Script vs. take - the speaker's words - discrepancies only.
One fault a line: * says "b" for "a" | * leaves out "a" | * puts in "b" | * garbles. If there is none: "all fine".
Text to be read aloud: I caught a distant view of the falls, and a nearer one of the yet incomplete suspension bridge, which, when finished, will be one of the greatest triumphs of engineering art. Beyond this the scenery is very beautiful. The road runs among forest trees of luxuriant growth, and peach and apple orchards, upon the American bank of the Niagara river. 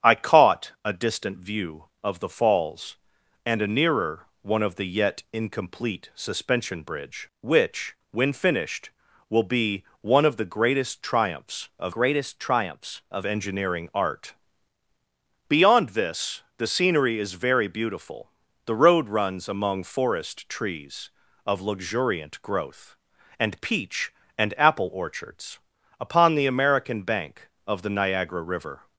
* puts in "greatest triumphs of"